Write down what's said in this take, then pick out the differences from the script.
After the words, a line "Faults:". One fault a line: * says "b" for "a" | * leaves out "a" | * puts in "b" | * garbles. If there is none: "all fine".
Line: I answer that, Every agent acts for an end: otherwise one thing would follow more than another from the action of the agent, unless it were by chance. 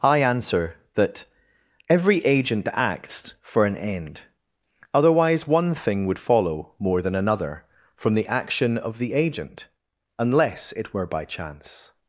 I answer that, Every agent acts for an end: otherwise one thing would follow more than another from the action of the agent, unless it were by chance.
Faults:
all fine